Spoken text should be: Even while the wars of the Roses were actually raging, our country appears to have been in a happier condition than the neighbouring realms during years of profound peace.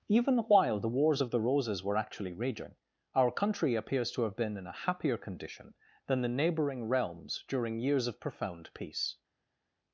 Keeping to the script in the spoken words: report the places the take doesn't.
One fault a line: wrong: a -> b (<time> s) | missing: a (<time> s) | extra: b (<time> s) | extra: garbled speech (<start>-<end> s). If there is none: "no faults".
no faults